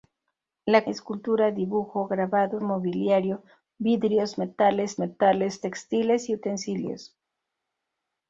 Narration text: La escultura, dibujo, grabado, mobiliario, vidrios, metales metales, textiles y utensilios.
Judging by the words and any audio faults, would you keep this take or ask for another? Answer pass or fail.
pass